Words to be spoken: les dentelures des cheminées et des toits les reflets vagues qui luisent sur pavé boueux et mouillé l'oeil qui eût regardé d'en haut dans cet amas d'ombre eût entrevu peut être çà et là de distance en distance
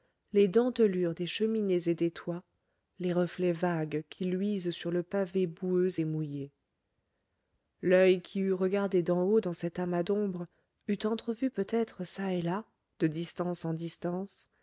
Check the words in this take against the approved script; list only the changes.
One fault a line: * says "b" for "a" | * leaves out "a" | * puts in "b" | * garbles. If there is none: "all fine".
* puts in "le"